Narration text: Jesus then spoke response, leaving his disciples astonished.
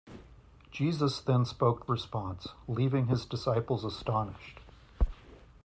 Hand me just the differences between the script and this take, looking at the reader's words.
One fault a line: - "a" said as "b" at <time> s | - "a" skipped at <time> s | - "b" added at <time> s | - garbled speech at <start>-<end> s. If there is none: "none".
none